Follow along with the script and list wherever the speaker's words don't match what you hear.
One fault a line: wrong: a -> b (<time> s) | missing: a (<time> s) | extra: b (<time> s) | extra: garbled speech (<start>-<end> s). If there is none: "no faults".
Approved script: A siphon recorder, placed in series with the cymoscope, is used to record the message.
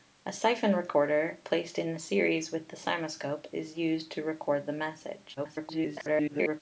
extra: garbled speech (5.4-6.6 s)